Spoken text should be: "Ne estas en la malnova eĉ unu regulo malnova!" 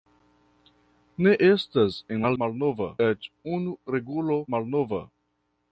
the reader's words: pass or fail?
pass